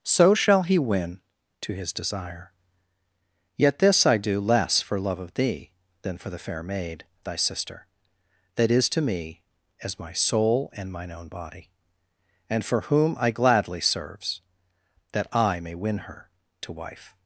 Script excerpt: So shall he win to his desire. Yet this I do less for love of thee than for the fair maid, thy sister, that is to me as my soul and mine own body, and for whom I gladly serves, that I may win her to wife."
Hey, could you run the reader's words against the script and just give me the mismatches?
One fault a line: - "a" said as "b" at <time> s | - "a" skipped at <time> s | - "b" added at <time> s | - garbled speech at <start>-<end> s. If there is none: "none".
none